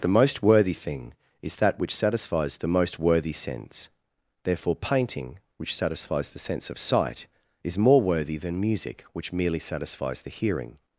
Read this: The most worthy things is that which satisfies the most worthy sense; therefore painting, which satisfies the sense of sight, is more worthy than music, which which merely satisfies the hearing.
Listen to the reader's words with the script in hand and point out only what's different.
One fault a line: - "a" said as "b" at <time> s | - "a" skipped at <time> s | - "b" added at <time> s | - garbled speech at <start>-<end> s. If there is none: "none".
- "things" said as "thing" at 0.7 s
- "which" skipped at 9.3 s